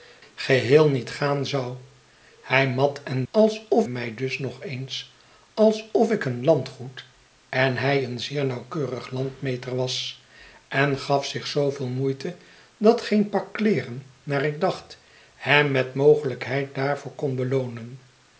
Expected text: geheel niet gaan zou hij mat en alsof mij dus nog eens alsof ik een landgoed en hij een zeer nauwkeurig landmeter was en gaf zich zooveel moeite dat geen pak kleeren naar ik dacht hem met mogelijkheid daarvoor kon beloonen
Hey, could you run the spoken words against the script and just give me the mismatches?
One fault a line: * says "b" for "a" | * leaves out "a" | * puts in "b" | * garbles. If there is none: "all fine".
all fine